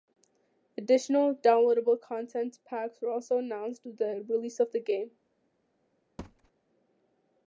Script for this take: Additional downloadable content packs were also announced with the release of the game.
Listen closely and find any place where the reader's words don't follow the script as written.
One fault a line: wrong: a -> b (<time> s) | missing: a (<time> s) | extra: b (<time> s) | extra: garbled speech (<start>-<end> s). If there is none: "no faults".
no faults